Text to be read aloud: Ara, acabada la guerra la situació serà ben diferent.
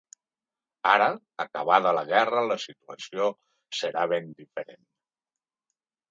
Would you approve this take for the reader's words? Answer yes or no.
yes